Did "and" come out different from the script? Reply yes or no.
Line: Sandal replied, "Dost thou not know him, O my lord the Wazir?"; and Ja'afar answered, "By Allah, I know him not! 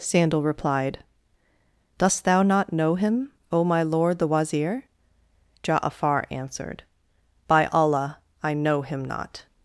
yes